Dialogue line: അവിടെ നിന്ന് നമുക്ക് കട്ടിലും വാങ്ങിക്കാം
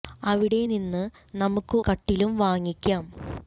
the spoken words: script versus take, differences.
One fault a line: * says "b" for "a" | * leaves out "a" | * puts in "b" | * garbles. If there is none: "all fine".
all fine